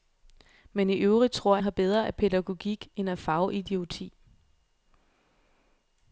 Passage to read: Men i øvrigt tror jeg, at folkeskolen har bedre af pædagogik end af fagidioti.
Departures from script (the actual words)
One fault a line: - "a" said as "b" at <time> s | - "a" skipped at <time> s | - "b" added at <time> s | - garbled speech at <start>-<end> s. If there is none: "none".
- "jeg at folkeskolen" skipped at 1.6 s